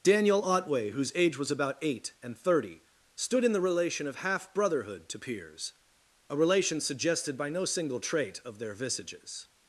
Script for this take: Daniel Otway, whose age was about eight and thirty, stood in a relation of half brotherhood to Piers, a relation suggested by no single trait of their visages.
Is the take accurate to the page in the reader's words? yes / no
no